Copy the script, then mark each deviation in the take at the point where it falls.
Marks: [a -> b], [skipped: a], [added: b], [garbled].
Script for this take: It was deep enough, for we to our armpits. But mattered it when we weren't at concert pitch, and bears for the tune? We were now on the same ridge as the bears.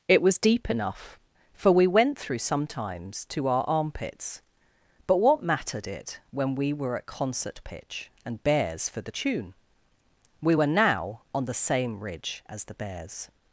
It was deep enough, for we [added: went through sometimes] to our armpits. But [added: what] mattered it when we [weren't -> were] at concert pitch, and bears for the tune? We were now on the same ridge as the bears.